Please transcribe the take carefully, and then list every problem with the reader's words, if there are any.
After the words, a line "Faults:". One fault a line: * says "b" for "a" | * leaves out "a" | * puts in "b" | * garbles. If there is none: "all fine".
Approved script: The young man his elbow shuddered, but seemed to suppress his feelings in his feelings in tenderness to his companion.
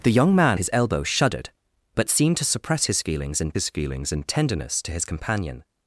The young man his elbow shuddered, but seemed to suppress his feelings in his feelings in tenderness to his companion.
Faults:
all fine